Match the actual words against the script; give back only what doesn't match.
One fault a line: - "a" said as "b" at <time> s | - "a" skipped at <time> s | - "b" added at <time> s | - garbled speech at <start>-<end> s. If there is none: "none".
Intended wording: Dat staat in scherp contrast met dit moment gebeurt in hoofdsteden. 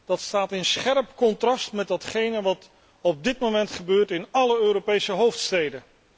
- "datgene wat op" added at 1.9 s
- "alle Europese" added at 4.3 s